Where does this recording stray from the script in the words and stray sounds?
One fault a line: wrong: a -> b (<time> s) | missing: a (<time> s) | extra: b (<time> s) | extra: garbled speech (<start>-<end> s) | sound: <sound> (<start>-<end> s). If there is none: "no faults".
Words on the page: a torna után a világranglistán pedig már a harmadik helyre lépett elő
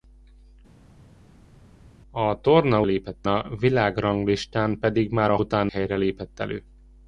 wrong: után -> lépett (2.8 s)
wrong: harmadik -> után (5.4 s)